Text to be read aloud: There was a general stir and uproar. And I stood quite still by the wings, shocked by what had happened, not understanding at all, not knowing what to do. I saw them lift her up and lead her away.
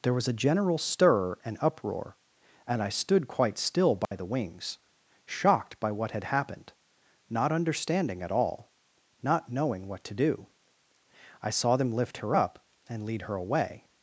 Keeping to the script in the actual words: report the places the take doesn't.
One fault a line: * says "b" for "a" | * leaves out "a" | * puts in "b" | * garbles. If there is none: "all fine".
all fine